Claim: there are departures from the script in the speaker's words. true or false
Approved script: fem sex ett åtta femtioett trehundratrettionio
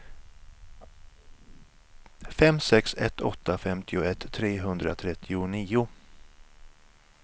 false